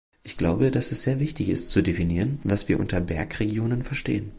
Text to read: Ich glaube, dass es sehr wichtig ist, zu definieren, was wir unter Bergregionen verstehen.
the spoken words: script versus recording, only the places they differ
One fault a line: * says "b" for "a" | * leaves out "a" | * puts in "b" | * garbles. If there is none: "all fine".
all fine